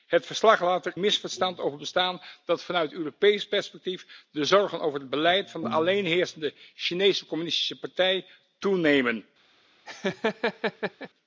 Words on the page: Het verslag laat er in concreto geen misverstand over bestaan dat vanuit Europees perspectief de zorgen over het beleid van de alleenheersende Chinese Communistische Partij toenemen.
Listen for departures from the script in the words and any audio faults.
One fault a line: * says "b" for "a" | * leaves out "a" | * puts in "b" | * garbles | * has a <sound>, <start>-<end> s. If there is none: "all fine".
* leaves out "in concreto geen"
* has a laugh, 9.9-11.1 s